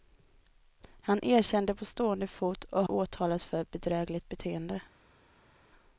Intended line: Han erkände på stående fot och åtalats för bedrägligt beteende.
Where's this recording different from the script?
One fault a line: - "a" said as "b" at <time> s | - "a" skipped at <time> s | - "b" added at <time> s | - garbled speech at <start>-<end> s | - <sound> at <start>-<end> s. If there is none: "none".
none